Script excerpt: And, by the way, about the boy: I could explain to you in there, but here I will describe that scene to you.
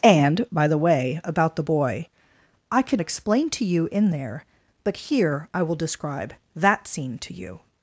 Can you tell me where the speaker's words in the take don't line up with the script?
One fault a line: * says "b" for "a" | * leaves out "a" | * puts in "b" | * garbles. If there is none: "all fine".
all fine